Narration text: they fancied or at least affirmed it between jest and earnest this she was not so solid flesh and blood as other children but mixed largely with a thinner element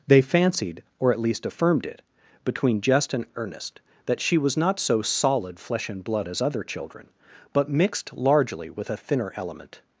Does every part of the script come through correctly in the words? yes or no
no